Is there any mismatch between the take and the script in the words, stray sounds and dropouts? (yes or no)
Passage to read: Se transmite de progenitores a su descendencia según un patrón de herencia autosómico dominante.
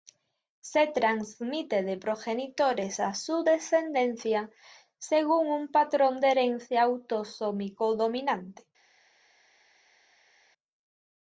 no